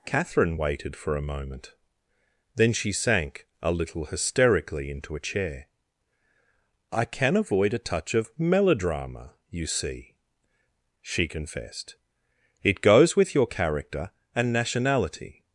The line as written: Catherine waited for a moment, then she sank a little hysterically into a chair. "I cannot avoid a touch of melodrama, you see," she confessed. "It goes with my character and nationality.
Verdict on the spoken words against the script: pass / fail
fail